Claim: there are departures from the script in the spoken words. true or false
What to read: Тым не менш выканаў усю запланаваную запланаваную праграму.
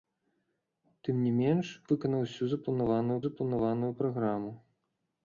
false